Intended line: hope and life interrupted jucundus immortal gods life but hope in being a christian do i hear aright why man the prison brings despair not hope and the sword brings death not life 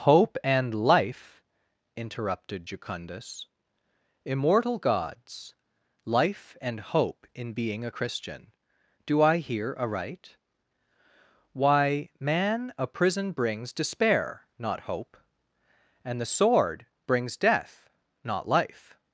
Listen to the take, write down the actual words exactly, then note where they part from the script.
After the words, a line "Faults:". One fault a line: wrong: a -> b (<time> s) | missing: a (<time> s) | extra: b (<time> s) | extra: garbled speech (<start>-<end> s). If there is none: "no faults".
hope and life interrupted jucundus immortal gods life and hope in being a christian do i hear aright why man a prison brings despair not hope and the sword brings death not life
Faults:
wrong: but -> and (6.6 s)
wrong: the -> a (12.8 s)